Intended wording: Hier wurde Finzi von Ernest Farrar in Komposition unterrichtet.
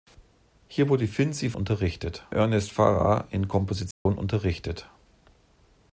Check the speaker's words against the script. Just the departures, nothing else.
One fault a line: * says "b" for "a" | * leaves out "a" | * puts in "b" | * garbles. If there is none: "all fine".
* says "unterrichtet" for "von"